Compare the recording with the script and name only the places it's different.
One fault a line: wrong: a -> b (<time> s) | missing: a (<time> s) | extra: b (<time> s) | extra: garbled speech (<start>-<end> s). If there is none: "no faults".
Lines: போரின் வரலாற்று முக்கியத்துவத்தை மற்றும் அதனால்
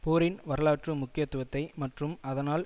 no faults